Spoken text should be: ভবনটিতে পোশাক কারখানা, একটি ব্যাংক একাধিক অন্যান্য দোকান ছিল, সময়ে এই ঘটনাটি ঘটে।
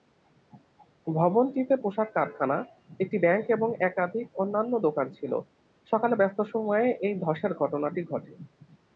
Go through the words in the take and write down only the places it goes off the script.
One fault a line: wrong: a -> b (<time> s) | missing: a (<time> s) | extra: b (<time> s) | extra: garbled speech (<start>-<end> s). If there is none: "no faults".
extra: এবং (3.5 s)
extra: সকালে ব্যস্ত (5.9 s)
extra: ধসের (7.2 s)